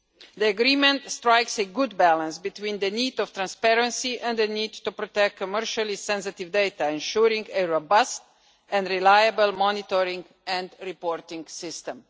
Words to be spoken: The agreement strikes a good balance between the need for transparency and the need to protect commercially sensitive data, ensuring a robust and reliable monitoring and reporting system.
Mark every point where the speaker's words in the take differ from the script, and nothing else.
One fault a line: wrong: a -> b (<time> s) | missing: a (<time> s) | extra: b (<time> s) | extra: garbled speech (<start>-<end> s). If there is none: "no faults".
no faults